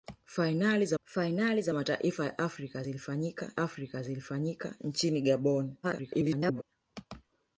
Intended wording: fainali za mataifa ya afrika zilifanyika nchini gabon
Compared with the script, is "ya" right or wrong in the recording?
right